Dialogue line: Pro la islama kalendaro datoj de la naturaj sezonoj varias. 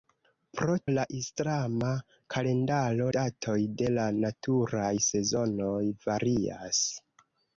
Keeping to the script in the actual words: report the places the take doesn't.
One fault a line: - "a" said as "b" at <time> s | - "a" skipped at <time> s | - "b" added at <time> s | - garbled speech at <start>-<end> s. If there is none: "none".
none